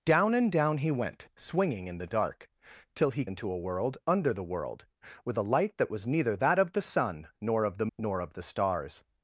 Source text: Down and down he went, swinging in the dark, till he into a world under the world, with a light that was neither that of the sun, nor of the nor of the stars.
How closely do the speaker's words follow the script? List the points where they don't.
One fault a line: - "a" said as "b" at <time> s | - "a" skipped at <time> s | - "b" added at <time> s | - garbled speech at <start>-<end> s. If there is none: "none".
none